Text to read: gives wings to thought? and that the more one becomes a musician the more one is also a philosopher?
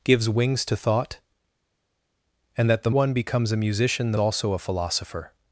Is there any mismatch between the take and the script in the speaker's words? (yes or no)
yes